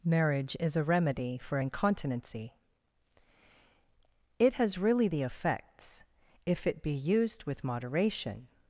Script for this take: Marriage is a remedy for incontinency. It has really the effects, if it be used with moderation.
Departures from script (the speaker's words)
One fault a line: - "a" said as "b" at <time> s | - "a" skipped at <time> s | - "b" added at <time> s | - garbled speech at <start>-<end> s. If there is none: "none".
none